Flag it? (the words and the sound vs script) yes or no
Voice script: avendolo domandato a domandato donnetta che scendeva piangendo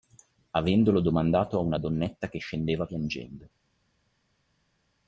yes